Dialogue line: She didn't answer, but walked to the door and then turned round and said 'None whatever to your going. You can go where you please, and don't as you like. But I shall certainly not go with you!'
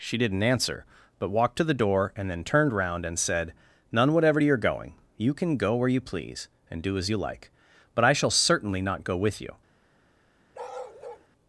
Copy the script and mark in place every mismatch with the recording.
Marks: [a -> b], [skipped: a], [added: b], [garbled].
She didn't answer, but walked to the door and then turned round and said 'None whatever to your going. You can go where you please, and [don't -> do] as you like. But I shall certainly not go with you!'